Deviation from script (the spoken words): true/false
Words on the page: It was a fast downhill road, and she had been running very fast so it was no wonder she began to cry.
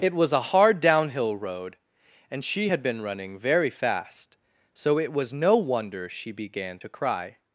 true